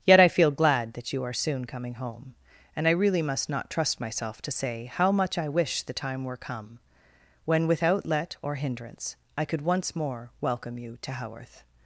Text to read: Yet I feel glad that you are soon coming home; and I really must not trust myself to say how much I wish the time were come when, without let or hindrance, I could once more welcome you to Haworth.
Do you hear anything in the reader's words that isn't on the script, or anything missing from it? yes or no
no